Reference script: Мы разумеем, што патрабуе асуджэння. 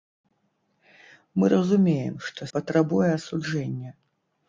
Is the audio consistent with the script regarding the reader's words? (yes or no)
yes